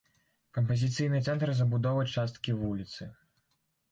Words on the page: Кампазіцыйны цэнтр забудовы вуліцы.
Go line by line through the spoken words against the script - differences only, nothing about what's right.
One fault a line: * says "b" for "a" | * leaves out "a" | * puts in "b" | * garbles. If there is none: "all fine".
* puts in "часткі"